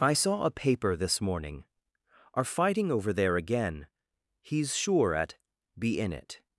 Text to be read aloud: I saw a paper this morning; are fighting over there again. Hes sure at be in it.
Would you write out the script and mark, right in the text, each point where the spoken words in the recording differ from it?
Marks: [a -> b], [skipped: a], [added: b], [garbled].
I saw a paper this morning; are fighting over there again. Hes sure at be in it.